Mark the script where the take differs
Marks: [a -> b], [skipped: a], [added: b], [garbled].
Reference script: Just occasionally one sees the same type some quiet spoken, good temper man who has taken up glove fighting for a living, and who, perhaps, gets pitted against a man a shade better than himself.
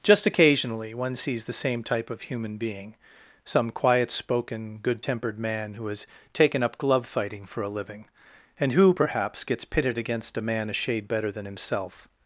Just occasionally one sees the same type [added: of human being] some quiet spoken, good [temper -> tempered] man who has taken up glove fighting for a living, and who, perhaps, gets pitted against a man a shade better than himself.